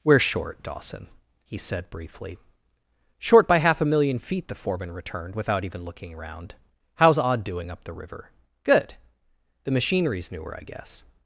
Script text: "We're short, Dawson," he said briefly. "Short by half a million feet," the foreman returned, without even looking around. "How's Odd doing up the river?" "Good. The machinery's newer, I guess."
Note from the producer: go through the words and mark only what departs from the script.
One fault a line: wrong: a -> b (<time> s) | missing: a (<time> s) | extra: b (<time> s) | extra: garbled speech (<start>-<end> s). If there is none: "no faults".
no faults